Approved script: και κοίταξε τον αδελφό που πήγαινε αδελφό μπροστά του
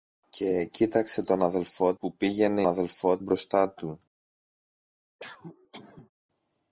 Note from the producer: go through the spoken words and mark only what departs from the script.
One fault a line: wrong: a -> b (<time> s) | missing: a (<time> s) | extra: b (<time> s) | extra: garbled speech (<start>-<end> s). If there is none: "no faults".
no faults